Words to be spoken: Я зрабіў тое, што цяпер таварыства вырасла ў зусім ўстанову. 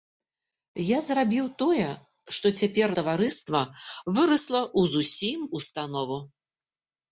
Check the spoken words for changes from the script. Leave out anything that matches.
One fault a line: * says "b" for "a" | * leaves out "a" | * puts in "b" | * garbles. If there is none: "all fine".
all fine